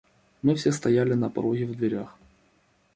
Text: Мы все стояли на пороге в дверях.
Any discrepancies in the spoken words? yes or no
no